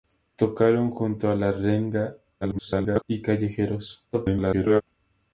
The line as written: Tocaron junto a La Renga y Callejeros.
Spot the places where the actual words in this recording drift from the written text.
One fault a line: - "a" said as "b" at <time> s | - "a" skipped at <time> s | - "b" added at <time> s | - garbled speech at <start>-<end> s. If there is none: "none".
- garbled speech at 2.4-3.0 s
- garbled speech at 4.1-4.8 s